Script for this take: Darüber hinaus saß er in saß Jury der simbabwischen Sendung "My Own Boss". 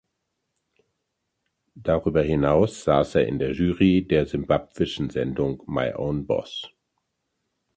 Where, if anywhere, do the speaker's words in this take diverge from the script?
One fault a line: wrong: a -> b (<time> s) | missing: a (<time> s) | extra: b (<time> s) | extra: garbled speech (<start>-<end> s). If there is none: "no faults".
wrong: saß -> der (3.4 s)